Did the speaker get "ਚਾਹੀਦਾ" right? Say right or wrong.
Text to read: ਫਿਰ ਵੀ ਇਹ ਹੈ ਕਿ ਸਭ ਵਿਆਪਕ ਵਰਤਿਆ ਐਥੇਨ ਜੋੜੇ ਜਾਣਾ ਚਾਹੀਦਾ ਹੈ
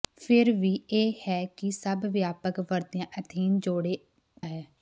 wrong